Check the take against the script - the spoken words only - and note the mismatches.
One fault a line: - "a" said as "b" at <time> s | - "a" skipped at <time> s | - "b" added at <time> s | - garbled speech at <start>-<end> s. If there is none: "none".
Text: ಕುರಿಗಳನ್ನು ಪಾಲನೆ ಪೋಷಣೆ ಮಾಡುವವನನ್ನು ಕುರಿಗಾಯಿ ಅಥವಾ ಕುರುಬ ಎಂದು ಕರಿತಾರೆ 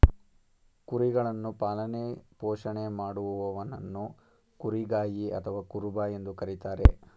none